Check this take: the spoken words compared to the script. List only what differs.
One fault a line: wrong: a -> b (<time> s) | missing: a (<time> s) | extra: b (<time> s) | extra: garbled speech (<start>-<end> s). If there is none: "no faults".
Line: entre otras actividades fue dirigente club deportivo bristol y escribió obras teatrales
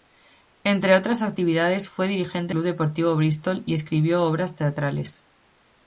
no faults